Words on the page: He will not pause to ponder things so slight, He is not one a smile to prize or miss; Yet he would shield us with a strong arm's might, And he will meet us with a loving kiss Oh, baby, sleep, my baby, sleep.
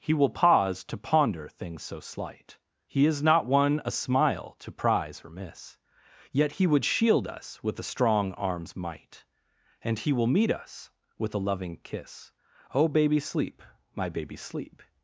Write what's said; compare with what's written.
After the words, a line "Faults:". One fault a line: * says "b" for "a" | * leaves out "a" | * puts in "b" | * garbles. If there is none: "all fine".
He will pause to ponder things so slight, He is not one a smile to prize or miss; Yet he would shield us with a strong arm's might, And he will meet us with a loving kiss Oh, baby, sleep, my baby, sleep.
Faults:
* leaves out "not"